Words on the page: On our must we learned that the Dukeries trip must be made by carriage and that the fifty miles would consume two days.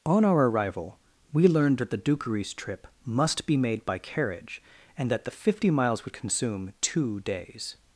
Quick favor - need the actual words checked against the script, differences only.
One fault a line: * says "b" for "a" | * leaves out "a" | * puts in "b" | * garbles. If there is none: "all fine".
* says "arrival" for "must"